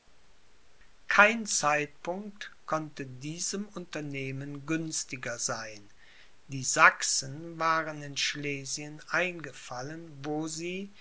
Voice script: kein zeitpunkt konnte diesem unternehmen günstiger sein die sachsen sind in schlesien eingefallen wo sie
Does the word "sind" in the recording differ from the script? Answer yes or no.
yes